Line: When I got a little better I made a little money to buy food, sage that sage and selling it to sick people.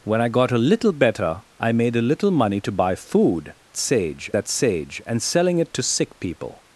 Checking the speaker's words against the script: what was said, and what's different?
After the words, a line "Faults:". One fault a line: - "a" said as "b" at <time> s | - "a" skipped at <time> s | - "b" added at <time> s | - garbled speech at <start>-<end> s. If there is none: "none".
When I got a little better I made a little money to buy food, sage that sage and selling it to sick people.
Faults:
none